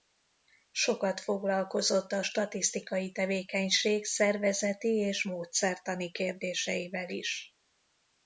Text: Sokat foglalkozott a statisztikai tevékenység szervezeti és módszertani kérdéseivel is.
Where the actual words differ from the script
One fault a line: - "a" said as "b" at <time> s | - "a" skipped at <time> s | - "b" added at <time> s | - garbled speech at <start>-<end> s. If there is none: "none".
none